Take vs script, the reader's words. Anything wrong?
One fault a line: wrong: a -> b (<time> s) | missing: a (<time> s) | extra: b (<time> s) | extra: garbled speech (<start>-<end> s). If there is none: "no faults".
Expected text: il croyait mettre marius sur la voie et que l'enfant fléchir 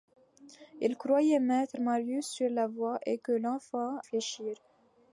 no faults